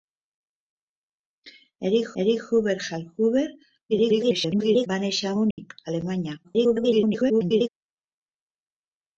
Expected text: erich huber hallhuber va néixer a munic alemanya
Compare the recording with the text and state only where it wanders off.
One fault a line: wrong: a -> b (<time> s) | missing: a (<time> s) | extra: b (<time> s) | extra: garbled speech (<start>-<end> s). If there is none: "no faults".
extra: erich (2.2 s)
extra: garbled speech (3.9-4.9 s)
extra: garbled speech (6.4-7.7 s)